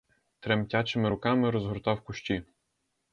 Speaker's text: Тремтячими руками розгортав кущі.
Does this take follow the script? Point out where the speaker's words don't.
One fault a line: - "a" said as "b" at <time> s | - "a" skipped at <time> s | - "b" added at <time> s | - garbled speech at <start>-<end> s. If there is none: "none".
none